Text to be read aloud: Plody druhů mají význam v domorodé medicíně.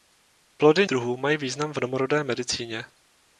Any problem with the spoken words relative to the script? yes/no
no